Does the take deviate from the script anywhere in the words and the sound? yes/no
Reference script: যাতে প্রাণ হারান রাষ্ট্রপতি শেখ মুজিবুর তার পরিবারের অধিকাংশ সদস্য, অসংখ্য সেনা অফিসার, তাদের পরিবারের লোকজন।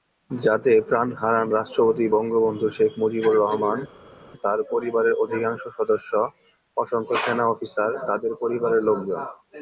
yes